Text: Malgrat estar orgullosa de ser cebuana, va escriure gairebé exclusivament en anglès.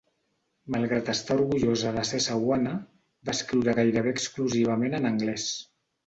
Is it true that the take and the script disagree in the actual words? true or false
false